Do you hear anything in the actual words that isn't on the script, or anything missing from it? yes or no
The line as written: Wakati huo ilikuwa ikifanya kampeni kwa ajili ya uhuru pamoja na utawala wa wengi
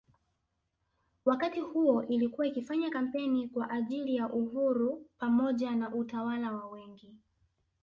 no